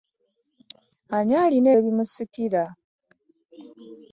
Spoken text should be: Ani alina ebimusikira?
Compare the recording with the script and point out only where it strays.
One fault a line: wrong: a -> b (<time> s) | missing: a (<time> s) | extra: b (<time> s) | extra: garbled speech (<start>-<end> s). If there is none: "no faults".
no faults